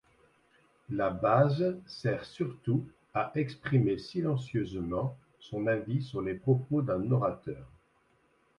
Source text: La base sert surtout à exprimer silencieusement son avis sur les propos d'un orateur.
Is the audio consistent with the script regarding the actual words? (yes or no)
yes